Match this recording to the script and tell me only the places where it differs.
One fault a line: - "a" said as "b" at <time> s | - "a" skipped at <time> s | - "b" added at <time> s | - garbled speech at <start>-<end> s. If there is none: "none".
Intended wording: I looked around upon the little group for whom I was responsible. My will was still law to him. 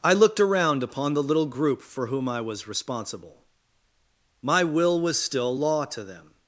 - "him" said as "them" at 6.0 s